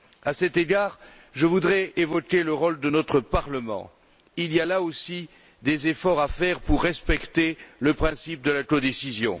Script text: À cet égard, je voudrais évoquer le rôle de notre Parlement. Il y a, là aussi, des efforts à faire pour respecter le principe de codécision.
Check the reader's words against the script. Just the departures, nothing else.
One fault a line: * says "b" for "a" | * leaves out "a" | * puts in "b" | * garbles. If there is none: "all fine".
* puts in "la"